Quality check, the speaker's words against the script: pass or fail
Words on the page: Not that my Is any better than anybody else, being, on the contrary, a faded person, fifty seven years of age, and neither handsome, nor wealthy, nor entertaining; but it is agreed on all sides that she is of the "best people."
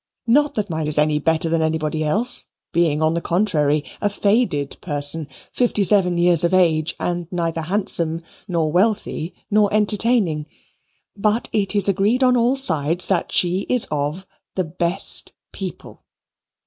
pass